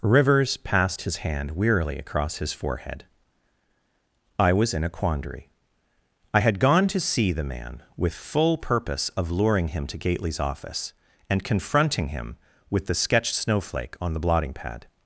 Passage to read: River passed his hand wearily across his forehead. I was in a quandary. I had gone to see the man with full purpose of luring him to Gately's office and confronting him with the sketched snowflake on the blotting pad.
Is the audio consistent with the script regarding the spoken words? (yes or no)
no